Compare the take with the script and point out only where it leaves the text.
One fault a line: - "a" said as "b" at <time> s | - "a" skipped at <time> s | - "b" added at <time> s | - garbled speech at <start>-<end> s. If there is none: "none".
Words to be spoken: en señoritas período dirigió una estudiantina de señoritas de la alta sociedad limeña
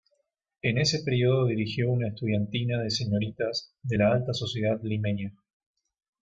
- "señoritas" said as "ese" at 0.8 s